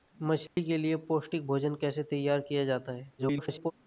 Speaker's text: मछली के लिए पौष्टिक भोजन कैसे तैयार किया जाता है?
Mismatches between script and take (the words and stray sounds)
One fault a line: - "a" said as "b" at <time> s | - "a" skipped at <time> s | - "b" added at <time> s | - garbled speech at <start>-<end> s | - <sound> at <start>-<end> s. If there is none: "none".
- dropout at 0.5-0.6 s
- garbled speech at 3.2-3.7 s